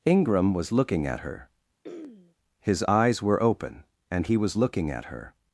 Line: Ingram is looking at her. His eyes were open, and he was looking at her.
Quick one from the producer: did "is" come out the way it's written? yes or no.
no